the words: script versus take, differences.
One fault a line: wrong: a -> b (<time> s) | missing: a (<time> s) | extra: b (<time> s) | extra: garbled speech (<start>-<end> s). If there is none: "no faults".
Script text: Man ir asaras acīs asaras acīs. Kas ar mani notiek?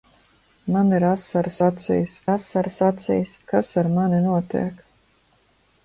no faults